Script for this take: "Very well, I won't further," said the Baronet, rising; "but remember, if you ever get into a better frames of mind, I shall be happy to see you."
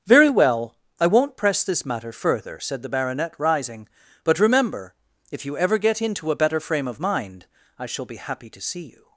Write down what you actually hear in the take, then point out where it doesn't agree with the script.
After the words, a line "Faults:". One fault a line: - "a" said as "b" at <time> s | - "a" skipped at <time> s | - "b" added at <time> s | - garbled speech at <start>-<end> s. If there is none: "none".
"Very well, I won't press this matter further," said the Baronet, rising; "but remember, if you ever get into a better frame of mind, I shall be happy to see you."
Faults:
- "press this matter" added at 1.4 s
- "frames" said as "frame" at 6.6 s